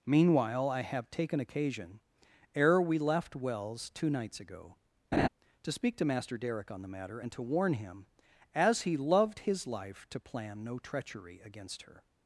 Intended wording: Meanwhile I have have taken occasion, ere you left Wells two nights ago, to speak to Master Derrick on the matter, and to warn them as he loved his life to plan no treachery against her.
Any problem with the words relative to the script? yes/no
yes